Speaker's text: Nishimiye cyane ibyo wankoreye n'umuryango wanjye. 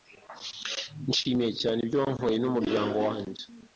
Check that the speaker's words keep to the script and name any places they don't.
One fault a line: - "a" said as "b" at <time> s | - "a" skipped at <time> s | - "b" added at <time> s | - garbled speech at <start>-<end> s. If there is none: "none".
none